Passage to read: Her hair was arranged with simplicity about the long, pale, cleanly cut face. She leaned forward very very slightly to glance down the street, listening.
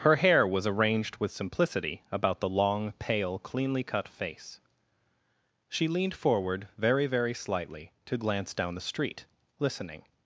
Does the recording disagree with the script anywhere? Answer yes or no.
no